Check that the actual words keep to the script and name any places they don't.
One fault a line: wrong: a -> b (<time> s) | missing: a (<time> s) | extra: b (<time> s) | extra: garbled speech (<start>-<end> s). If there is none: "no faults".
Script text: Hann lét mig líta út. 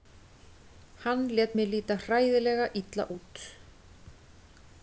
extra: hræðilega illa (2.0 s)